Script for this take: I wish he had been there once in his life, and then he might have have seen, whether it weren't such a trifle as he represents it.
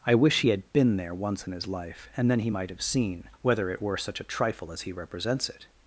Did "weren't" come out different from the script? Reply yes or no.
yes